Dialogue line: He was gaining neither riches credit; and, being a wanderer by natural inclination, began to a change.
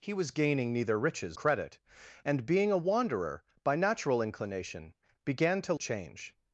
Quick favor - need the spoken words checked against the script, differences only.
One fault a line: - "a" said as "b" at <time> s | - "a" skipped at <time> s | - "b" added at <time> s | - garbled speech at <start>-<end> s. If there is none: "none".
none